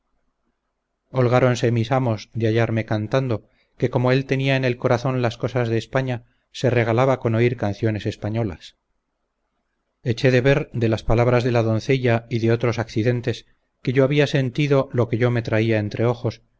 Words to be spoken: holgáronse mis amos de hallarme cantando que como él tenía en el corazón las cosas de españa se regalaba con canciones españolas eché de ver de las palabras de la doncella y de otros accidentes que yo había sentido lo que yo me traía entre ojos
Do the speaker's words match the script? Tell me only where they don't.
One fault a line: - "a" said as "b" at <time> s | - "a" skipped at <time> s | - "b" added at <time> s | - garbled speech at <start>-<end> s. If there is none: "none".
- "oír" added at 7.3 s